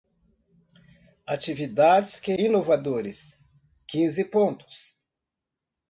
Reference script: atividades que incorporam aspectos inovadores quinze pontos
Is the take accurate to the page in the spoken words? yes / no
no